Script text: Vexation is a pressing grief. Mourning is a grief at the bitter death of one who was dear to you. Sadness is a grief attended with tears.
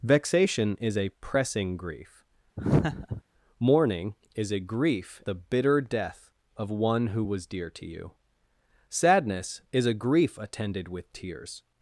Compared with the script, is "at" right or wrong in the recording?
wrong